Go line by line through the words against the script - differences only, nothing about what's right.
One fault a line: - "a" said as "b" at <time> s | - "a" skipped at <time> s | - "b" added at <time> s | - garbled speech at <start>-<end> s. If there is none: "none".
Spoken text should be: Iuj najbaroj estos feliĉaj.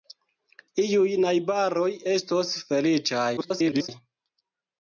- garbled speech at 3.4-3.9 s